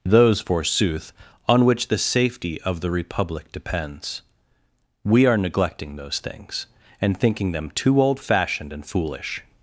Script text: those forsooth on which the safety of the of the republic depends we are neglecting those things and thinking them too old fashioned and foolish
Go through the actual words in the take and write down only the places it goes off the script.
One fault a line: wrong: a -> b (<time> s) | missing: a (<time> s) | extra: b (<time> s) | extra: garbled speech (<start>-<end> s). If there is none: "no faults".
missing: of the (2.9 s)